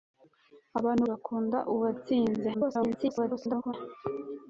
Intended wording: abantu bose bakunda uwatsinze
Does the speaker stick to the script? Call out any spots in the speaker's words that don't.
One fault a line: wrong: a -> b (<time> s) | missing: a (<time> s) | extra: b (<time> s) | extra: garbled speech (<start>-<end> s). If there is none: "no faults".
missing: bose (1.0 s)
extra: garbled speech (2.5-3.7 s)